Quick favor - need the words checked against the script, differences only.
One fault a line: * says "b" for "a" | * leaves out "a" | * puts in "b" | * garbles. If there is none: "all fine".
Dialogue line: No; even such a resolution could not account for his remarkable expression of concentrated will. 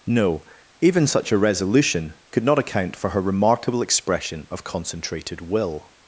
* says "her" for "his"